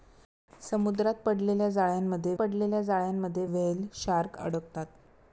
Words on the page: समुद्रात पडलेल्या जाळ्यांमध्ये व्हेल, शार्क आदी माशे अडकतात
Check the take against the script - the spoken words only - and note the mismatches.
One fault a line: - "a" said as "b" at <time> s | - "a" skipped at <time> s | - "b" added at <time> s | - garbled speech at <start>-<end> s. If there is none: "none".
- "पडलेल्या जाळ्यांमध्ये" added at 2.4 s
- "आदी माशे" skipped at 4.4 s